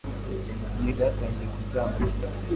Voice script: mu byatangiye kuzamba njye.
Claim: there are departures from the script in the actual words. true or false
false